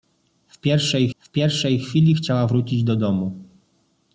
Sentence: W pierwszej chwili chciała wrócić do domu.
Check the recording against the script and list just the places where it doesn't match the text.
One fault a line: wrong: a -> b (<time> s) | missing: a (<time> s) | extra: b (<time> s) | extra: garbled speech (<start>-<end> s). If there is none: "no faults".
extra: w pierwszej (1.2 s)